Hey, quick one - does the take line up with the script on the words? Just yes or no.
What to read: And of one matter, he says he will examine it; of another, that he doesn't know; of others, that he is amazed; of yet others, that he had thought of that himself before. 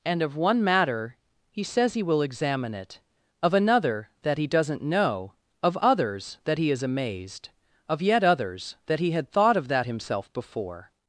yes